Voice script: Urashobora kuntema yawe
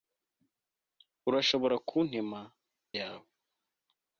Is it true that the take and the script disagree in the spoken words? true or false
false